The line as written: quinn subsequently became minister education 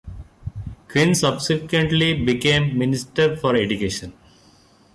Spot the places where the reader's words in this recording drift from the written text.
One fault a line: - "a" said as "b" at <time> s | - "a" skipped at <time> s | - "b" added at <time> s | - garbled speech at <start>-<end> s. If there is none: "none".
- "for" added at 3.3 s